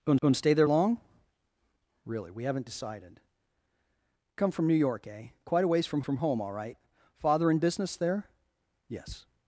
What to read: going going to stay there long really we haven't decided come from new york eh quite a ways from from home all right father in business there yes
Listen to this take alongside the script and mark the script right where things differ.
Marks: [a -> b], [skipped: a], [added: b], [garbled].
going going to stay there long really we haven't decided come from new york eh quite a ways from from home all right father in business there yes